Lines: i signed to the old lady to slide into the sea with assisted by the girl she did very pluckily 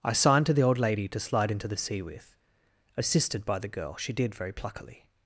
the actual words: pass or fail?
pass